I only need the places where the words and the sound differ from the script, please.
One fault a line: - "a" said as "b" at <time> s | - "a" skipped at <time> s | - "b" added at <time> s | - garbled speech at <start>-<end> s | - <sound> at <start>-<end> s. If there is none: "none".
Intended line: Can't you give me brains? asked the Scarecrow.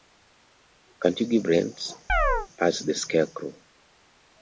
- "me" skipped at 1.4 s
- chirp at 2.1-2.5 s